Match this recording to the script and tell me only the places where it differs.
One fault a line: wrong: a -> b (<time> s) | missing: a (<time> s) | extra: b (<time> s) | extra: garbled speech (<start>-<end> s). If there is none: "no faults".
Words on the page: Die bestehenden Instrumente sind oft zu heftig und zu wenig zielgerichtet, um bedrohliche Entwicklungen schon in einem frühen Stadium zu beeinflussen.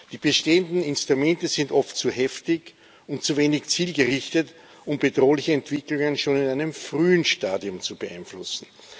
no faults